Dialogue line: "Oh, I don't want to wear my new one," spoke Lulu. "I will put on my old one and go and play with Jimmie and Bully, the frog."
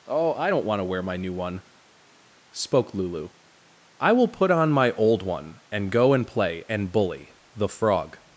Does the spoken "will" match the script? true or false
true